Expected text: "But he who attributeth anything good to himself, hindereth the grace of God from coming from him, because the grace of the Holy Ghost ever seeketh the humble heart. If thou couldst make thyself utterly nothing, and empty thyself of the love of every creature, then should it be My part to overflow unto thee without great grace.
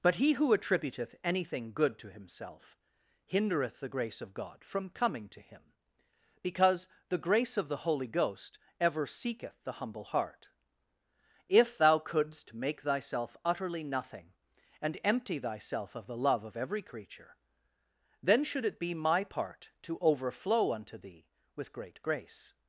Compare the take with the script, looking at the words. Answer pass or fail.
fail